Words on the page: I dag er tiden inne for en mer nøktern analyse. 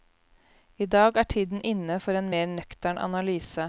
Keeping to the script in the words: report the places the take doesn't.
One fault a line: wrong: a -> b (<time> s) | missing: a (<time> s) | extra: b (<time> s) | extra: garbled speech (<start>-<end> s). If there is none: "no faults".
no faults